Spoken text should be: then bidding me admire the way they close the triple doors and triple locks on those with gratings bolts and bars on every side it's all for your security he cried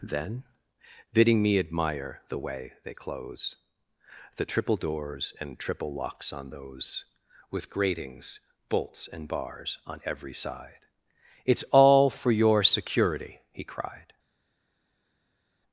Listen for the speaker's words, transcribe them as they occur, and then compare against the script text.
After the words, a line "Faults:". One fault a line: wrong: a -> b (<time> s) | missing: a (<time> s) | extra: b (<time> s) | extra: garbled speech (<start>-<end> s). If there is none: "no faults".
then bidding me admire the way they close the triple doors and triple locks on those with gratings bolts and bars on every side it's all for your security he cried
Faults:
no faults